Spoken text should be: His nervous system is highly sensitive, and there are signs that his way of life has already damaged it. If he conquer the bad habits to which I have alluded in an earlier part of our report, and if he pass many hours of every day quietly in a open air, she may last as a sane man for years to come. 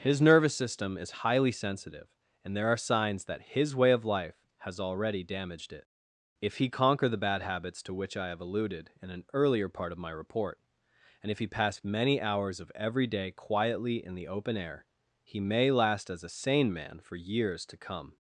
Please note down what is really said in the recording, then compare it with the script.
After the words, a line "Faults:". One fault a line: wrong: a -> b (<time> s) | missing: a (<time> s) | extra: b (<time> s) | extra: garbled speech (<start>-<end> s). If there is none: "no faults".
His nervous system is highly sensitive, and there are signs that his way of life has already damaged it. If he conquer the bad habits to which I have alluded in an earlier part of my report, and if he pass many hours of every day quietly in the open air, he may last as a sane man for years to come.
Faults:
wrong: our -> my (10.0 s)
wrong: a -> the (14.2 s)
wrong: she -> he (15.2 s)